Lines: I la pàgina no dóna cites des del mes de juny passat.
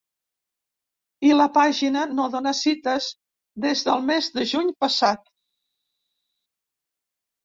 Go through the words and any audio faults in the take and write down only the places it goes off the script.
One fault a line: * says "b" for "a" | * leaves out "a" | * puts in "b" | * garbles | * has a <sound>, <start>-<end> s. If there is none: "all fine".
all fine